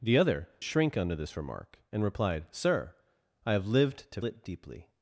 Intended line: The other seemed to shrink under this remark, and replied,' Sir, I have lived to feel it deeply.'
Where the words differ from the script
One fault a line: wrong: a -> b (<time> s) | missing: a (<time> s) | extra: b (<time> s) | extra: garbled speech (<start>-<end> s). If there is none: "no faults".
missing: seemed to (0.5 s)
missing: feel (4.2 s)